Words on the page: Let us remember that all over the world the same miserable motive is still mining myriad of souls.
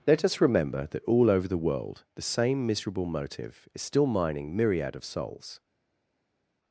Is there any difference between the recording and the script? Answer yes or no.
no